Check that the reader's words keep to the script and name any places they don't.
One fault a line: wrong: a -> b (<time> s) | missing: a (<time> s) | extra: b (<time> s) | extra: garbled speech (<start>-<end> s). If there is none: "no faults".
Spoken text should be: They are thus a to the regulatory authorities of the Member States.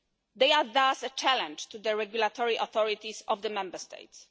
extra: challenge (1.1 s)